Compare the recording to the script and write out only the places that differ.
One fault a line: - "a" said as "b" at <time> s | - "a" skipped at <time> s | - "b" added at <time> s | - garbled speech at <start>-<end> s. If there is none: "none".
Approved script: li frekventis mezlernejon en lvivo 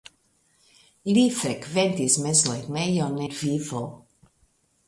- "en" skipped at 3.2 s